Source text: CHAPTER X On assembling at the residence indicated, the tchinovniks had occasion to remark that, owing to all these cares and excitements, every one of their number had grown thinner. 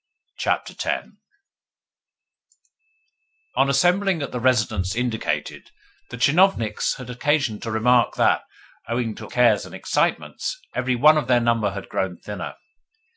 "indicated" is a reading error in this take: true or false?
false